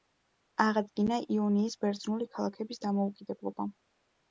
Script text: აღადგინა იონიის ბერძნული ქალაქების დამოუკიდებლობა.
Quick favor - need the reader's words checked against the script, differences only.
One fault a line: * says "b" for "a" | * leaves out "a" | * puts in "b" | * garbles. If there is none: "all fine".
all fine